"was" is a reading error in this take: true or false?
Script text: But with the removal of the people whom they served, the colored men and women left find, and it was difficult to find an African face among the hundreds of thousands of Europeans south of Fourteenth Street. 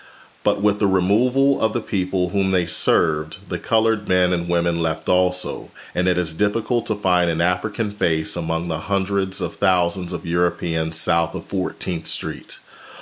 true